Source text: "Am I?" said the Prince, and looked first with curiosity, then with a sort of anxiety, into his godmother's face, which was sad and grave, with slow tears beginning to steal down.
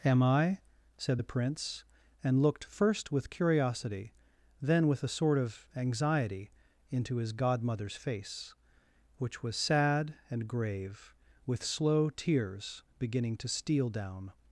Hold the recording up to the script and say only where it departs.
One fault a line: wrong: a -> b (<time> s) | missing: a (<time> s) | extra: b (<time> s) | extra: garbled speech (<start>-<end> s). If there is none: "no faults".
no faults